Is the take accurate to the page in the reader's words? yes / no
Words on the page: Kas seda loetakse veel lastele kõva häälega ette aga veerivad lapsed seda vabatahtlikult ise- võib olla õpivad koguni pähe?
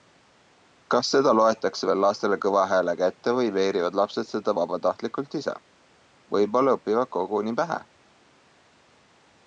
no